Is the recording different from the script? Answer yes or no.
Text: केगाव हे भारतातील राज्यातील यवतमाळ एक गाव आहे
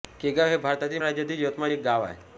no